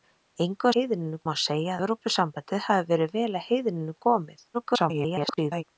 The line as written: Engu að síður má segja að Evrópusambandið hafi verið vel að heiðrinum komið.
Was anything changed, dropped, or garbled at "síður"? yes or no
yes